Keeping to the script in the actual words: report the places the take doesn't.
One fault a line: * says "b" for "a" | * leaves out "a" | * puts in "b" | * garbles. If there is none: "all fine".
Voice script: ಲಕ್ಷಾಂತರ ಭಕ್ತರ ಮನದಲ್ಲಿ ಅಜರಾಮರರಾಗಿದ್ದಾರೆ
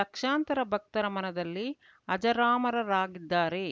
all fine